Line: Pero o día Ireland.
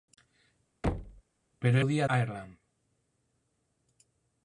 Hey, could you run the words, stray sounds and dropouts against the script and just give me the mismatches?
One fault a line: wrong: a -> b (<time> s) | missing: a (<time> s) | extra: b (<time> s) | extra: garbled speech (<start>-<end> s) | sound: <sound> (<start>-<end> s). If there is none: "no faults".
sound: thud (0.8-1.2 s)